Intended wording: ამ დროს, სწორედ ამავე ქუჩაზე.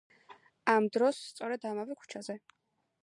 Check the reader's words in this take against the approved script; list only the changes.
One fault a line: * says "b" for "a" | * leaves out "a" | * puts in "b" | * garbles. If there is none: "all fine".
all fine